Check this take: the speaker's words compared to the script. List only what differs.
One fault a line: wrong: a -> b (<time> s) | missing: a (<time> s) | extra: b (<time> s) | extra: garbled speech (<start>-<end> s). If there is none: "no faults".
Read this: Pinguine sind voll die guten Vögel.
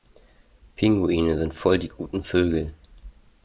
no faults